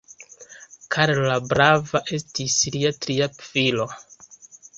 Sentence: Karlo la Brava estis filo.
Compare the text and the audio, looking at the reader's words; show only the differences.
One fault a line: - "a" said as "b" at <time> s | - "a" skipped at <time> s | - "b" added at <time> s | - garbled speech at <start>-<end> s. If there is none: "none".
- "lia tria" added at 2.8 s